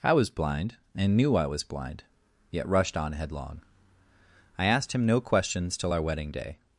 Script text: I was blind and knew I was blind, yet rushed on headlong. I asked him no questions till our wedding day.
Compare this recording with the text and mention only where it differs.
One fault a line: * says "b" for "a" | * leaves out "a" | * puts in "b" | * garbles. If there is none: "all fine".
all fine